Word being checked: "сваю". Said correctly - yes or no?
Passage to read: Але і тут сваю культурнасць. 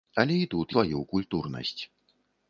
yes